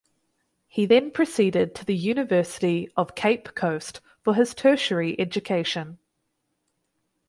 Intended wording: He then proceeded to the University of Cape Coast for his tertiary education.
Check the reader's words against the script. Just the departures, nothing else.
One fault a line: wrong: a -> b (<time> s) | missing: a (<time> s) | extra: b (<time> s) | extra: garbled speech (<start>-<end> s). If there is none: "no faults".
no faults